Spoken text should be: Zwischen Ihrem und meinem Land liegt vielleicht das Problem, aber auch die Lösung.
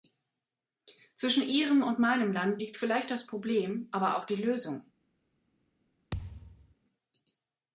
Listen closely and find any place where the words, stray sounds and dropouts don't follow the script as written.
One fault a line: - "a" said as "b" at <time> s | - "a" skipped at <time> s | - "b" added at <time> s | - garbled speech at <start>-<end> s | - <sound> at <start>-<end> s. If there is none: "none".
- thud at 6.1-6.7 s